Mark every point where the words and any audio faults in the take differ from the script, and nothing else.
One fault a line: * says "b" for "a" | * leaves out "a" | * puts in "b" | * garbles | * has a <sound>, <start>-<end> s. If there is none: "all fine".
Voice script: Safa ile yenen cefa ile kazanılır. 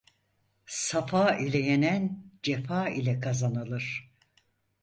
all fine